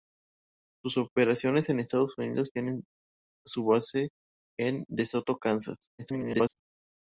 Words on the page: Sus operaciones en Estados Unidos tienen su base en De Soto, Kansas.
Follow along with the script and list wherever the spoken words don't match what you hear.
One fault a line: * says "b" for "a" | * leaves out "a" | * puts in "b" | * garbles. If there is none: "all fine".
* garbles